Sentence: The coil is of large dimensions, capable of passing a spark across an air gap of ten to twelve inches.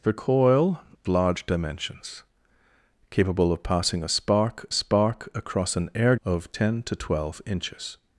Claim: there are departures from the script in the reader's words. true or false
true